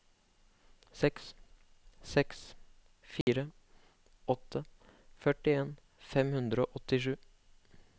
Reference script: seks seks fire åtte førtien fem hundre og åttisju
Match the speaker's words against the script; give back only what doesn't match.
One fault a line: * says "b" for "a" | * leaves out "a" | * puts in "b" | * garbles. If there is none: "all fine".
all fine